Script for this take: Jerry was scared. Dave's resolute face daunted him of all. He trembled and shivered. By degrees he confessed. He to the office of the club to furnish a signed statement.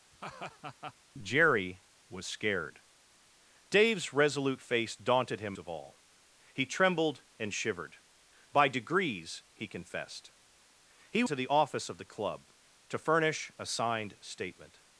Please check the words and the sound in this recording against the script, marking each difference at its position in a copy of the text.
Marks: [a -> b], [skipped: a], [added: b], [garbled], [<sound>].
[laugh] Jerry was scared. Dave's resolute face daunted him of all. He trembled and shivered. By degrees he confessed. He to the office of the club to furnish a signed statement.